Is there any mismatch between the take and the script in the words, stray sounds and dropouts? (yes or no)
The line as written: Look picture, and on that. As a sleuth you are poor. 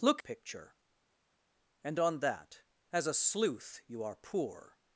no